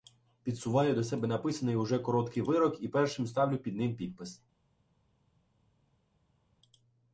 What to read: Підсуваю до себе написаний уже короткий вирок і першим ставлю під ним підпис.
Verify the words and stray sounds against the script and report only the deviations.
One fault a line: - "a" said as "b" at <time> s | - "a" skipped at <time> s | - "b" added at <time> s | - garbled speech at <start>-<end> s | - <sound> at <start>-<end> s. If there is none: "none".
none